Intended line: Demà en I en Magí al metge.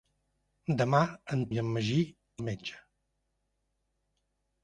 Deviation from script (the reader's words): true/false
false